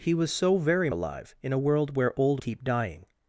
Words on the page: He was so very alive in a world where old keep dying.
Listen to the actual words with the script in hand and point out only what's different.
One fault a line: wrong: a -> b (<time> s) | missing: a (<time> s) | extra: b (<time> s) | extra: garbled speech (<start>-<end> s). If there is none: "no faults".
no faults